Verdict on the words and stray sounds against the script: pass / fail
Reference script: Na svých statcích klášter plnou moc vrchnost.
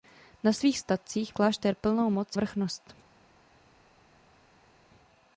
pass